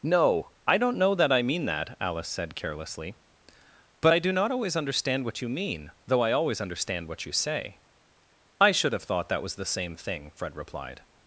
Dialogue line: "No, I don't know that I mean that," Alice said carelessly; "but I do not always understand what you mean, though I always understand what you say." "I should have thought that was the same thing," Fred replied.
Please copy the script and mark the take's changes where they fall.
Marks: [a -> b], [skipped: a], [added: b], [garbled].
"No, I don't know that I mean that," Alice said carelessly; "but I do not always understand what you mean, though I always understand what you say." "I should have thought that was the same thing," Fred replied.